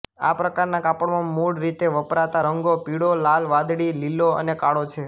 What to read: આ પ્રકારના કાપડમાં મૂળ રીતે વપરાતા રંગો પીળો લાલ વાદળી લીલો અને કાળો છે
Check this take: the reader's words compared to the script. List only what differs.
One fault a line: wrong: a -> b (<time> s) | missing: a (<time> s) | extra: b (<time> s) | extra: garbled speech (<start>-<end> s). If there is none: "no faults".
no faults